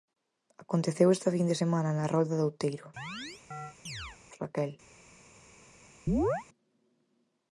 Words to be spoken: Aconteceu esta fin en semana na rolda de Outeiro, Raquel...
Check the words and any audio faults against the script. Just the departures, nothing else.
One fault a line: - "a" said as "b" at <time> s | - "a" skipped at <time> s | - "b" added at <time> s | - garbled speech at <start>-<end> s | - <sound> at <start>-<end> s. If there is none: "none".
- "en" said as "de" at 1.5 s
- chirp at 3.0-4.2 s
- chirp at 6.1-6.5 s